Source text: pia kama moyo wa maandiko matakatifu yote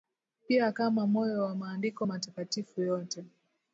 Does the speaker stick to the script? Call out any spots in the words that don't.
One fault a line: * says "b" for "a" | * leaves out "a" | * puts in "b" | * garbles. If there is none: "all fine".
all fine